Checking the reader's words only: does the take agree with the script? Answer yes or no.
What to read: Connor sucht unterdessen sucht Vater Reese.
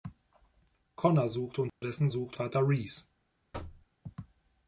yes